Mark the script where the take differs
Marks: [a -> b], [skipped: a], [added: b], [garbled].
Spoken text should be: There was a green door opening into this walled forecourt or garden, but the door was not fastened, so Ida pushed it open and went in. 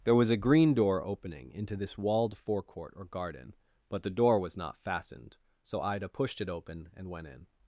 There was a green door opening into this walled forecourt or garden, but the door was not fastened, so Ida pushed it open and went in.